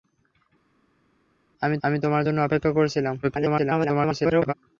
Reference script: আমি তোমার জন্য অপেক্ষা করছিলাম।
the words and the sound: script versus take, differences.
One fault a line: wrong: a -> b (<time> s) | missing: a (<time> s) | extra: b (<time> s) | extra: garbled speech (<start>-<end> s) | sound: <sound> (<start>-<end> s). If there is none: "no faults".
extra: আমি (1.8 s)
extra: garbled speech (3.2-4.5 s)